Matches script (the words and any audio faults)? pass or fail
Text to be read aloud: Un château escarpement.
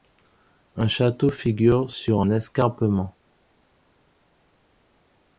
fail